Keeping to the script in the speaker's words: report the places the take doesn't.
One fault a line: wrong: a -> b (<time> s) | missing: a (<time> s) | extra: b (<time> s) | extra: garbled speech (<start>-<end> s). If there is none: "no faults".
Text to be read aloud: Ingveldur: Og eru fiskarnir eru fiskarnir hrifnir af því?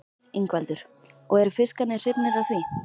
missing: eru fiskarnir (2.0 s)